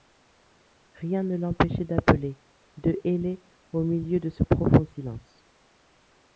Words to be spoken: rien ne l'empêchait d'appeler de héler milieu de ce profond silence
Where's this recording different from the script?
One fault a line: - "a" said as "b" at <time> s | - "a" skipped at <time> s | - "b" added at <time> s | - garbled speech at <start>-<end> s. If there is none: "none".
- "au" added at 3.7 s